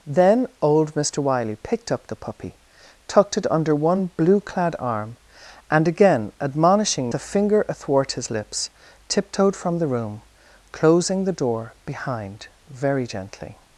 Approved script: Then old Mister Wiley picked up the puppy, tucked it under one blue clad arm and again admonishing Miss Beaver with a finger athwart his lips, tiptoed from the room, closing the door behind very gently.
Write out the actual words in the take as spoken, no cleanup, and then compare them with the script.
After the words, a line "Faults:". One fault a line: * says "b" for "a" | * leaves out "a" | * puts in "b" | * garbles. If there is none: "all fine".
Then old Mister Wiley picked up the puppy, tucked it under one blue clad arm and again admonishing A finger athwart his lips, tiptoed from the room, closing the door behind very gently.
Faults:
* leaves out "Miss Beaver with"